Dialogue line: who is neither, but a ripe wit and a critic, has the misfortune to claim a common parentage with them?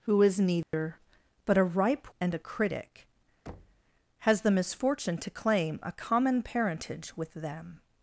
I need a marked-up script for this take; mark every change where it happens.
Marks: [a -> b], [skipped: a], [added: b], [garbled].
who is neither, but a ripe [skipped: wit] and a critic, has the misfortune to claim a common parentage with them?